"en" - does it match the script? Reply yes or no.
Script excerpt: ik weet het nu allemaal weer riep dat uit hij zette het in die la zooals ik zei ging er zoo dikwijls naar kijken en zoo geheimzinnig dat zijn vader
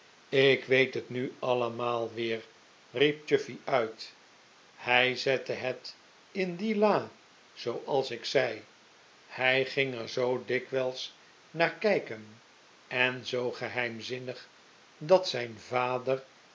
yes